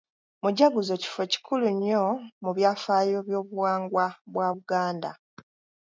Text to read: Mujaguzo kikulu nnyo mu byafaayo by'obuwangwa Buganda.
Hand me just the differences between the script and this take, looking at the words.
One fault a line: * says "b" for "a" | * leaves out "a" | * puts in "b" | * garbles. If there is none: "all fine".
* puts in "kifo"
* puts in "bwa"